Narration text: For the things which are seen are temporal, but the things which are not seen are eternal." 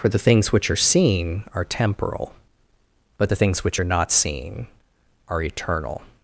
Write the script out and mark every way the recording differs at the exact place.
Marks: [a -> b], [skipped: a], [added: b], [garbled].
For the things which are seen are temporal, but the things which are not seen are eternal."